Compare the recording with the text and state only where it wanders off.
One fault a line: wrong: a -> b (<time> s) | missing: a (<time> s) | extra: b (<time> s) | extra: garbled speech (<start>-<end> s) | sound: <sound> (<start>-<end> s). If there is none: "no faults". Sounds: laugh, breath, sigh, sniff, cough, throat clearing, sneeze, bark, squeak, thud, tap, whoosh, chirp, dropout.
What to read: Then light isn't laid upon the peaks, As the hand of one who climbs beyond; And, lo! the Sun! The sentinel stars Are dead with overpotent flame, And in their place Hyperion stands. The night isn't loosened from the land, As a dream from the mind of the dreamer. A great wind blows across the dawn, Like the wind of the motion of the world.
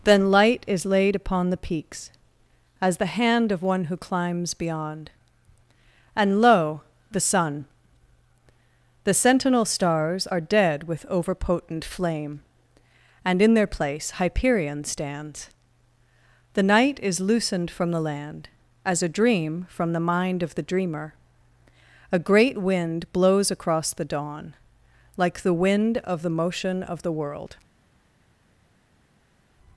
wrong: isn't -> is (0.7 s)
wrong: isn't -> is (17.0 s)